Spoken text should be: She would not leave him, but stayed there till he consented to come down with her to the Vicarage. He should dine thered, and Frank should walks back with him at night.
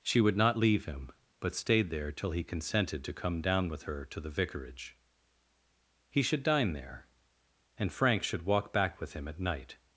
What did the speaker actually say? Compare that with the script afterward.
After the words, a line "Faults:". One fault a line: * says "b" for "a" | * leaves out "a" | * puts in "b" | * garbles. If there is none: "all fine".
She would not leave him, but stayed there till he consented to come down with her to the Vicarage. He should dine there, and Frank should walk back with him at night.
Faults:
* says "there" for "thered"
* says "walk" for "walks"